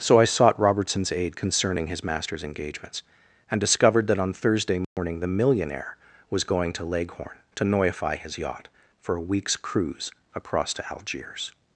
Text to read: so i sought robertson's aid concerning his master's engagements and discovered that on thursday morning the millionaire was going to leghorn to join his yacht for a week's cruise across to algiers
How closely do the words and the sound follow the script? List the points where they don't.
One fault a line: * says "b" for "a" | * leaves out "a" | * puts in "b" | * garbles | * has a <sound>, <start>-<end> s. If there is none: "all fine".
* has a dropout, 4.8-5.0 s
* says "noify" for "join"